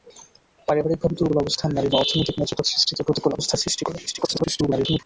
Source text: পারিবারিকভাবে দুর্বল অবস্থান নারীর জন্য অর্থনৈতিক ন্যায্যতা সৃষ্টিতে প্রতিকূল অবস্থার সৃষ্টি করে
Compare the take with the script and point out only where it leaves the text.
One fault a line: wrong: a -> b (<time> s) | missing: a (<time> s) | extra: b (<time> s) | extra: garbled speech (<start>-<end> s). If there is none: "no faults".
missing: জন্য (1.9 s)
extra: garbled speech (4.1-5.0 s)